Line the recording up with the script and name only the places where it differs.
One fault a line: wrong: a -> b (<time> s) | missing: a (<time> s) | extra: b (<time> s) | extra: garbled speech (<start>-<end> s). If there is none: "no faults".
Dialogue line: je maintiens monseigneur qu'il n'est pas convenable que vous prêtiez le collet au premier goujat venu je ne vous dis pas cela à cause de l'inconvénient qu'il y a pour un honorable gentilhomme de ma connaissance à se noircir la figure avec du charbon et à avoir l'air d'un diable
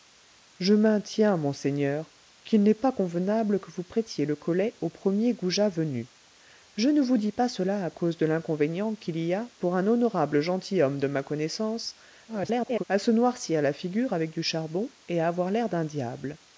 extra: garbled speech (12.3-12.8 s)